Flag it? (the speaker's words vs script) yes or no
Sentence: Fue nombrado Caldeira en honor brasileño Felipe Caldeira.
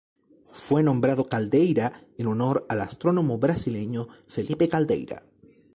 yes